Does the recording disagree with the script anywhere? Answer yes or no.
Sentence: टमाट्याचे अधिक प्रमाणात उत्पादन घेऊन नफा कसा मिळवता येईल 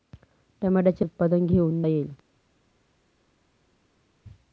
yes